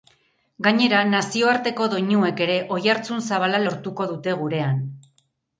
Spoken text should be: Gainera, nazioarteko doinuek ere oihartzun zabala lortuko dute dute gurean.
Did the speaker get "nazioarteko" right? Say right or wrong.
right